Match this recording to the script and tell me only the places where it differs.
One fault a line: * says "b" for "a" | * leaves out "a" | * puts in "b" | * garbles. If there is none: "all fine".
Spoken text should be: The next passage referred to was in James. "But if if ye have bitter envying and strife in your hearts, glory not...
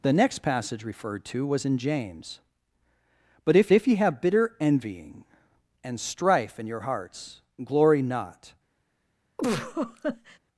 all fine